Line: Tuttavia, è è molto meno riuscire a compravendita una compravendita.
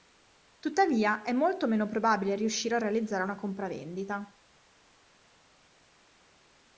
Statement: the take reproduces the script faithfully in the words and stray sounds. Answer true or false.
false